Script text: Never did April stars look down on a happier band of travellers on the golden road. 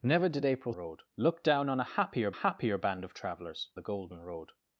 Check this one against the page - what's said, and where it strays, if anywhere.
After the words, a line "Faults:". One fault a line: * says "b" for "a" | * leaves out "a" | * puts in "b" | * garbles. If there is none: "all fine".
Never did April road look down on a happier happier band of travellers the golden road.
Faults:
* says "road" for "stars"
* puts in "happier"
* leaves out "on"